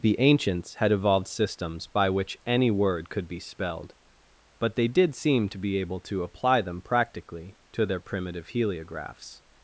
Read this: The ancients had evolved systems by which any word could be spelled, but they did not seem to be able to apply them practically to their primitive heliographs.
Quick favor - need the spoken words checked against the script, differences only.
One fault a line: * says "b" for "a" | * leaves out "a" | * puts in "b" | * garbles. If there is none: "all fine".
* leaves out "not"